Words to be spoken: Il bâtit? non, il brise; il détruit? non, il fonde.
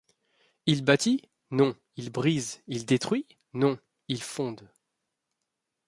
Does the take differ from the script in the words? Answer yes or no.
no